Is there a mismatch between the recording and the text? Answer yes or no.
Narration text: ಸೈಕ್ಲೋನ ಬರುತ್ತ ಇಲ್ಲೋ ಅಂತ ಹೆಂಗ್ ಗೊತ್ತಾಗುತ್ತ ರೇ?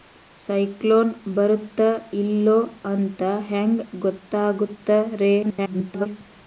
yes